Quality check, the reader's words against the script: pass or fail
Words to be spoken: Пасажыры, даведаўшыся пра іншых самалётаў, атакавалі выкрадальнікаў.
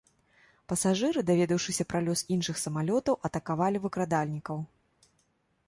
fail